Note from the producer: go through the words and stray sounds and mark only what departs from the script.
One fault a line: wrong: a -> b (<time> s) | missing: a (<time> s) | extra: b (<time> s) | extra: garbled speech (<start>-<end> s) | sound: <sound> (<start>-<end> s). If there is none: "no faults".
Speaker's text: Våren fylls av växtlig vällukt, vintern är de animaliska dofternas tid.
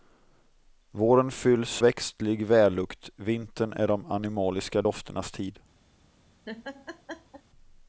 missing: av (1.8 s)
sound: laugh (6.5-7.4 s)